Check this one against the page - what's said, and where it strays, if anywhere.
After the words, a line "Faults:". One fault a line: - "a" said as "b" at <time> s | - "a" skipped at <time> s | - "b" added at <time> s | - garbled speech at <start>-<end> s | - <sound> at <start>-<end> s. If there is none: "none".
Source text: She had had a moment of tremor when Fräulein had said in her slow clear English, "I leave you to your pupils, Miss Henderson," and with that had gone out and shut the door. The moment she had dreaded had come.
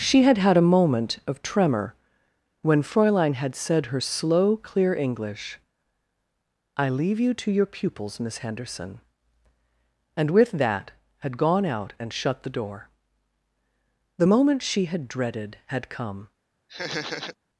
She had had a moment of tremor when Fräulein had said her slow clear English, "I leave you to your pupils, Miss Henderson," and with that had gone out and shut the door. The moment she had dreaded had come.
Faults:
- "in" skipped at 3.9 s
- laugh at 16.7-17.4 s